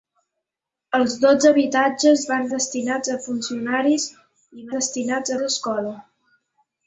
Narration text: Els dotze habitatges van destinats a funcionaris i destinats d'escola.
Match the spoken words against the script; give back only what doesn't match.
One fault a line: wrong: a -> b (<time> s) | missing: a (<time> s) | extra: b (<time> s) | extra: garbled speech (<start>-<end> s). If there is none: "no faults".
no faults